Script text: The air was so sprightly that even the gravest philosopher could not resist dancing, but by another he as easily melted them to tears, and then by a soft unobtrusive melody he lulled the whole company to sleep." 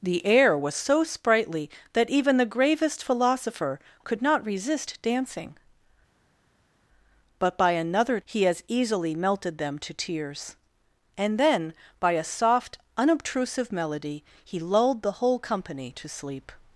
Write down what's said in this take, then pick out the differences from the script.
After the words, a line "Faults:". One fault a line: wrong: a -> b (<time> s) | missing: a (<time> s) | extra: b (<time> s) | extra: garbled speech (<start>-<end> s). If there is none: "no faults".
The air was so sprightly that even the gravest philosopher could not resist dancing, but by another he as easily melted them to tears, and then by a soft unobtrusive melody he lulled the whole company to sleep."
Faults:
no faults